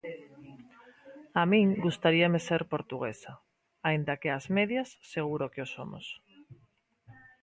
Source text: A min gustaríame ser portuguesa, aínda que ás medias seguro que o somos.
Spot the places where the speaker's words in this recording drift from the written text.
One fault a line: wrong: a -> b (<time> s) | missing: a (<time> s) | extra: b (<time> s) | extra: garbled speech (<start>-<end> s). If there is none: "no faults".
no faults